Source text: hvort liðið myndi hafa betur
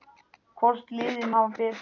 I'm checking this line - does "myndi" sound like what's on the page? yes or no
no